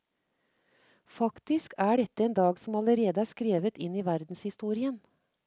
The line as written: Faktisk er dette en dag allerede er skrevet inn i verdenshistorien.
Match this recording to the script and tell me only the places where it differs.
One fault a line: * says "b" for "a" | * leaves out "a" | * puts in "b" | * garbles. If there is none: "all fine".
* puts in "som"